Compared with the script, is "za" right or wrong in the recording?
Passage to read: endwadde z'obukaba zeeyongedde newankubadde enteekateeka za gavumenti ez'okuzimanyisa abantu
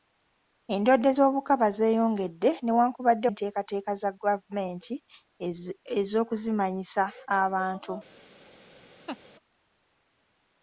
right